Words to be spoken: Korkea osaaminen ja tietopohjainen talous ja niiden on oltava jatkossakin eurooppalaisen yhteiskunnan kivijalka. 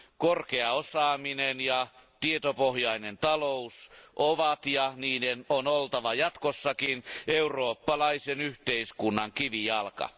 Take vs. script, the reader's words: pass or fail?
fail